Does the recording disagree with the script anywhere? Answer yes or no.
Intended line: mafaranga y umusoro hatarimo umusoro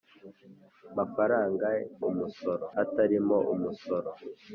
no